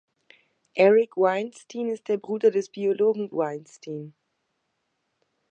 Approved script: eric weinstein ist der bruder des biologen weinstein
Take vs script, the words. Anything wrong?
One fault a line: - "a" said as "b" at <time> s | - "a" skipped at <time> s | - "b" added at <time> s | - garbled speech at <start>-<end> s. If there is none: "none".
none